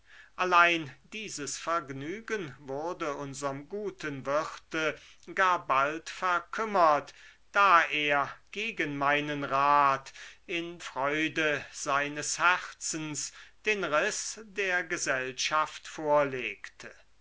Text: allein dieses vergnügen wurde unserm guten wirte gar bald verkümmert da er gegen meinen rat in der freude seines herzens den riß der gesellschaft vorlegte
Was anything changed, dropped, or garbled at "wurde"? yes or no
no